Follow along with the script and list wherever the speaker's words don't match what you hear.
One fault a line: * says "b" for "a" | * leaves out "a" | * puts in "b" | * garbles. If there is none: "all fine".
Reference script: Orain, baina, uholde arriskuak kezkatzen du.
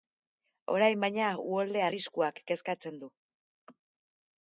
all fine